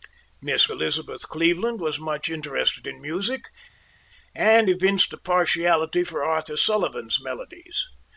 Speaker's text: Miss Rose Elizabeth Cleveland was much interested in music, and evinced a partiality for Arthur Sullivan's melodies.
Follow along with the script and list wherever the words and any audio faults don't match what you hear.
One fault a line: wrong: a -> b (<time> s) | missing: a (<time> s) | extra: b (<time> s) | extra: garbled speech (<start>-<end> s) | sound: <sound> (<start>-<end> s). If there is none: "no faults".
missing: Rose (0.7 s)